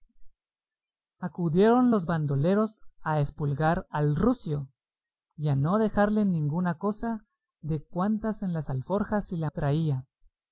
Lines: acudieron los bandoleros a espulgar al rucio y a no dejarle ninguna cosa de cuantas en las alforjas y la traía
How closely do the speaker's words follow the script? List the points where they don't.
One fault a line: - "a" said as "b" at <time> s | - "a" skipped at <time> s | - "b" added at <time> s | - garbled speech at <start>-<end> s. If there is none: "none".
none